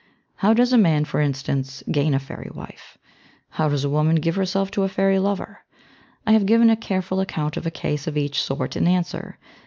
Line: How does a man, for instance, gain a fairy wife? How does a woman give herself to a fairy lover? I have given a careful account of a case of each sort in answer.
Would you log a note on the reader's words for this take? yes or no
no